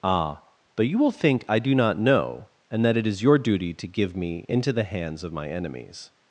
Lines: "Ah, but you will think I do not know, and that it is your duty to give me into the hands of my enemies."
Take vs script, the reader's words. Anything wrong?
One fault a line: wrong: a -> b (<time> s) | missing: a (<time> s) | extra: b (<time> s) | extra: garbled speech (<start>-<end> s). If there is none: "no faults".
no faults